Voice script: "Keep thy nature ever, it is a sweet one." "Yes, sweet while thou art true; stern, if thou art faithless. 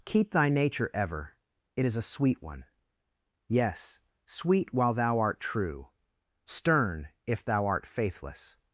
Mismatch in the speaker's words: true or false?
false